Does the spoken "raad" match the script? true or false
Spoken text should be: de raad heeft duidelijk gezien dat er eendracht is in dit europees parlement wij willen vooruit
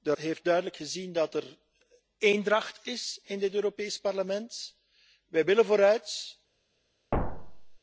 false